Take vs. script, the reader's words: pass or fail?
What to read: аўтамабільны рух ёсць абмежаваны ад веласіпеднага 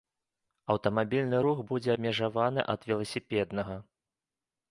fail